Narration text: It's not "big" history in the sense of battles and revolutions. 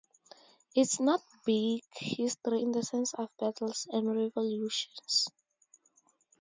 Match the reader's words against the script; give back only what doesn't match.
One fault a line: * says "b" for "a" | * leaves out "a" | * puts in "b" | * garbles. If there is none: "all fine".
all fine